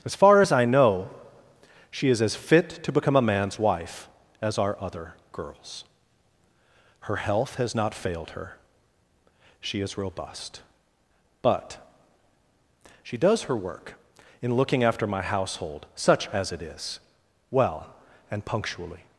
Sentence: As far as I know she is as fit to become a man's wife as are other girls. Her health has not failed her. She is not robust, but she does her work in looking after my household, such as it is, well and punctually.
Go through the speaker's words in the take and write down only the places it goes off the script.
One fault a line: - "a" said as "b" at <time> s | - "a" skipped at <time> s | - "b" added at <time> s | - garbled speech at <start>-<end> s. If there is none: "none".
- "not" skipped at 10.0 s